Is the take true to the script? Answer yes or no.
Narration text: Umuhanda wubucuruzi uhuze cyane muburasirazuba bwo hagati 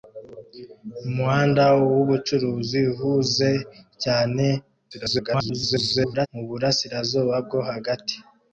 no